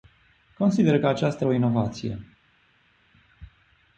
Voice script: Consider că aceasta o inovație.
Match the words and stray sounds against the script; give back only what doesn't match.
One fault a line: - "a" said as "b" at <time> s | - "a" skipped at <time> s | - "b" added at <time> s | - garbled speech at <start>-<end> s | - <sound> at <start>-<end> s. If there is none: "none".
none